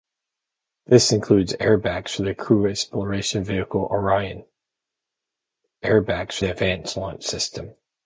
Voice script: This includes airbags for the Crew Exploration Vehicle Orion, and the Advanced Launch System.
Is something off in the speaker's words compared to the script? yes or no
yes